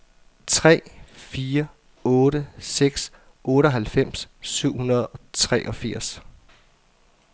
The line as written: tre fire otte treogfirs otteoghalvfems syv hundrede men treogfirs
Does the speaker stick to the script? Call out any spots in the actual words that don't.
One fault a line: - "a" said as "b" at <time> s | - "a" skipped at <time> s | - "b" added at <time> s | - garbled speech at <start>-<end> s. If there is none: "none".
- "treogfirs" said as "seks" at 2.6 s
- "men" said as "og" at 5.1 s